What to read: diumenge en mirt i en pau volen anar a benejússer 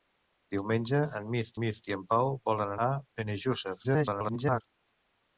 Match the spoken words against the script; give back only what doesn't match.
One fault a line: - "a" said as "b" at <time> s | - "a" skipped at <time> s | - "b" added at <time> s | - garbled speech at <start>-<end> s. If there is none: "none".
- "mirt" added at 1.6 s
- "anar" skipped at 2.7 s
- garbled speech at 3.8-4.6 s